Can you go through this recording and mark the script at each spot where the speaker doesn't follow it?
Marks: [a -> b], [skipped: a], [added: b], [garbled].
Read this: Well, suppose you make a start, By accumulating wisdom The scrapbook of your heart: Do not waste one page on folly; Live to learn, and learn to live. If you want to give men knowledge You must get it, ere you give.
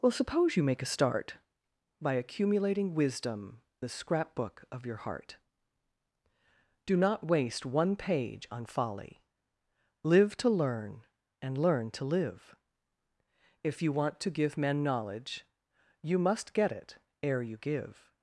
Well, suppose you make a start, By accumulating wisdom The scrapbook of your heart: Do not waste one page on folly; Live to learn, and learn to live. If you want to give men knowledge You must get it, ere you give.